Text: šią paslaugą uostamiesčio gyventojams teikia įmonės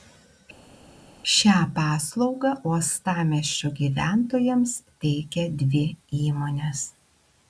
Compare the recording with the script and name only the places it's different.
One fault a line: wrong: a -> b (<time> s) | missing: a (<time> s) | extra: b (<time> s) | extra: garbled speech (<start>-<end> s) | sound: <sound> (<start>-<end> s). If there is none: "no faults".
extra: dvi (5.6 s)